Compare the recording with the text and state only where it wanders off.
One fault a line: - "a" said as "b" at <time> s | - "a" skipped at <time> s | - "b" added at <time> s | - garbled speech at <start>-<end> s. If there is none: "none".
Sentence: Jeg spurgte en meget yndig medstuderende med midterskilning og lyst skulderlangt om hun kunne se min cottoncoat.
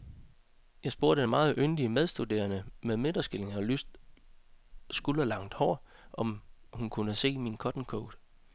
- "hår" added at 5.5 s